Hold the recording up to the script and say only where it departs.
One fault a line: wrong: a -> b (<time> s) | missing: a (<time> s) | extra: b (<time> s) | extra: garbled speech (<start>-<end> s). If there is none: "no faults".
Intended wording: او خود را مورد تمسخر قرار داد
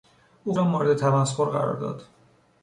missing: خود (0.5 s)